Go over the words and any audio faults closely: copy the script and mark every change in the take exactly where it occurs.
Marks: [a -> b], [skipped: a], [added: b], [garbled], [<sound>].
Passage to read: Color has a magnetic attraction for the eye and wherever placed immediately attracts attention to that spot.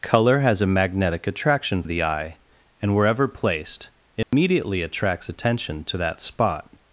Color has a magnetic attraction [skipped: for] the eye and wherever placed immediately [dropout] attracts attention to that spot.